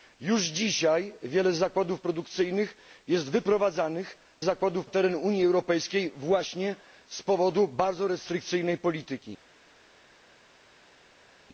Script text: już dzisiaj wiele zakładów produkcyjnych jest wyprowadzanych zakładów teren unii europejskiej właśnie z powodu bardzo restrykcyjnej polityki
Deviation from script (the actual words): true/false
false